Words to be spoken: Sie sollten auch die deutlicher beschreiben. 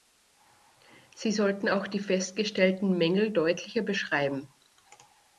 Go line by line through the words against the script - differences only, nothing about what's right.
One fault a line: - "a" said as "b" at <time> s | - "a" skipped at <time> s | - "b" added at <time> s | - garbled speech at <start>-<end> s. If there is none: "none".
- "festgestellten Mängel" added at 2.0 s